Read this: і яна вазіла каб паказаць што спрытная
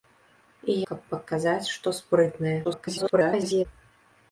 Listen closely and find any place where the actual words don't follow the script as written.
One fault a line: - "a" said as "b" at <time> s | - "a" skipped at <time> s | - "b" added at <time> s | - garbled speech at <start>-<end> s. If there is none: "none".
- "яна вазіла" skipped at 0.8 s
- garbled speech at 2.6-3.7 s